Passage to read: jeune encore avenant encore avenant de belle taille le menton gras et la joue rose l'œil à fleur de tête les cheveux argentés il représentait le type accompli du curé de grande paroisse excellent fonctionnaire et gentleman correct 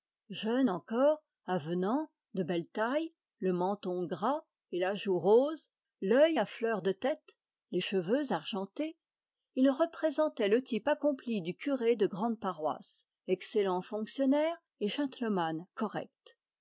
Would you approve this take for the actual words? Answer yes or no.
no